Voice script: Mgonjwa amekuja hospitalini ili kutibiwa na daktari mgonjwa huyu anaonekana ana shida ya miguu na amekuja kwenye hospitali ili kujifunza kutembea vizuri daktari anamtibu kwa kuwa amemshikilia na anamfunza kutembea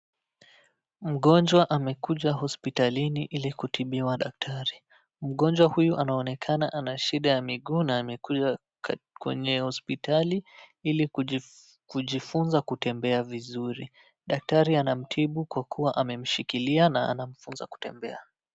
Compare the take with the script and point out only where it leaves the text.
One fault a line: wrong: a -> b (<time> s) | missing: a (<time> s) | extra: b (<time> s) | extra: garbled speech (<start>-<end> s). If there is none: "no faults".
missing: na (4.2 s)